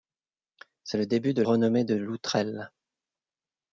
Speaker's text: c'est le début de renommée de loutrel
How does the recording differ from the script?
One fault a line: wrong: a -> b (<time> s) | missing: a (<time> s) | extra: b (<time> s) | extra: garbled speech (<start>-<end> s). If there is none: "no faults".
no faults